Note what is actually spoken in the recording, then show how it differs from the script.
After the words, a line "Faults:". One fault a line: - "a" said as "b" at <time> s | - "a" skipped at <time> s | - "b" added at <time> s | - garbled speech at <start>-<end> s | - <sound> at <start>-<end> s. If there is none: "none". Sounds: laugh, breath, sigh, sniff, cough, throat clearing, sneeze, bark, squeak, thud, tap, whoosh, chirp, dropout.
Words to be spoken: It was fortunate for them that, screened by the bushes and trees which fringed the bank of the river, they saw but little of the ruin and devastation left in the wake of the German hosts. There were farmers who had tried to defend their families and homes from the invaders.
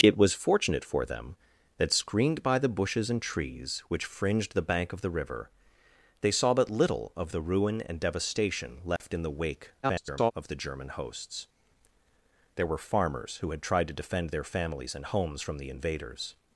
It was fortunate for them that, screened by the bushes and trees which fringed the bank of the river, they saw but little of the ruin and devastation left in the wake [garbled] of the German hosts. There were farmers who had tried to defend their families and homes from the invaders.
Faults:
- dropout at 9.0-9.0 s
- garbled speech at 9.8-10.3 s